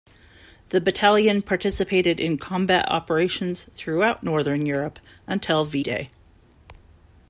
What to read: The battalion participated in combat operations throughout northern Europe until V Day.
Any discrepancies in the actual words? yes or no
no